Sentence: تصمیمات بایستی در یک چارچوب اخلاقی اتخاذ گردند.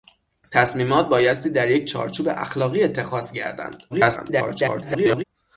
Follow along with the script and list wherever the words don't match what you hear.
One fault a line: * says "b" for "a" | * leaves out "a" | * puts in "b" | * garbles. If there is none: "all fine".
* garbles